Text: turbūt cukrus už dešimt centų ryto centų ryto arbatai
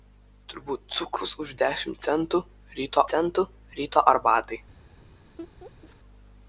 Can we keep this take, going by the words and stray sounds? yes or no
no